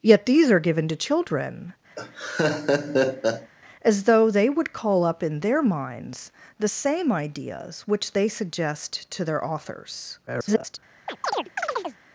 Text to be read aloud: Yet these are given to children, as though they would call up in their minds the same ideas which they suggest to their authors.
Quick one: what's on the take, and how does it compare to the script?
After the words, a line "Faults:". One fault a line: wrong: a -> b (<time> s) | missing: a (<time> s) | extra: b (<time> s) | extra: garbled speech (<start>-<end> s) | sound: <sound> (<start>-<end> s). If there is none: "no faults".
Yet these are given to children, as though they would call up in their minds the same ideas which they suggest to their authors. [garbled]
Faults:
sound: laugh (2.0-3.5 s)
extra: garbled speech (10.3-10.8 s)
sound: chirp (11.1-12.0 s)